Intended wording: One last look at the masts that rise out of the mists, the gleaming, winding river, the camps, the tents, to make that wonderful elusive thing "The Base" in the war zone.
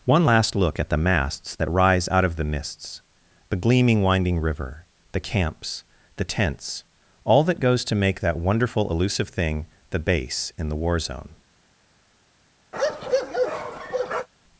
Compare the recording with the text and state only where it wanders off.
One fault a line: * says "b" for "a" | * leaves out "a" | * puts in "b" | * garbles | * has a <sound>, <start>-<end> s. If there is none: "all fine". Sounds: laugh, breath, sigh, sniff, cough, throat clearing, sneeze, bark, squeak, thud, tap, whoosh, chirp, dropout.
* puts in "all that goes"
* has a bark, 12.7-14.3 s